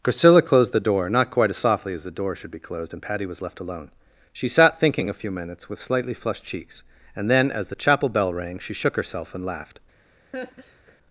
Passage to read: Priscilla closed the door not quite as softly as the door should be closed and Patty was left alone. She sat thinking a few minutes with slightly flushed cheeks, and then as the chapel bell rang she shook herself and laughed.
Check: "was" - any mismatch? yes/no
no